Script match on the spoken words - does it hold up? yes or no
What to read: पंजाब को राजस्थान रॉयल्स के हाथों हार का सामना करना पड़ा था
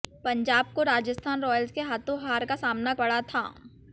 no